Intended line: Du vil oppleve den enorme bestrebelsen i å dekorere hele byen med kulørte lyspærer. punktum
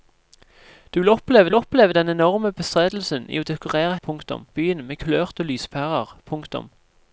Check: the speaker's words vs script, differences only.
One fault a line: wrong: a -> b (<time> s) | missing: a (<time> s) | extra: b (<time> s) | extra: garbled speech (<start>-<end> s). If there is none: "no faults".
extra: vil oppleve (1.5 s)
wrong: hele -> punktum (4.0 s)